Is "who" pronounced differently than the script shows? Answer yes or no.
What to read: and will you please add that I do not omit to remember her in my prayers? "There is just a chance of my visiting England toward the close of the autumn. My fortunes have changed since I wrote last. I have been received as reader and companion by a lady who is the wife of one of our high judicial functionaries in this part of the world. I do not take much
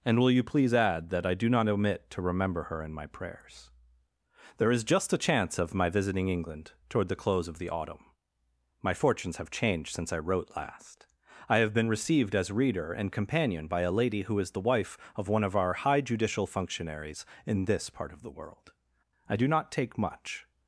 no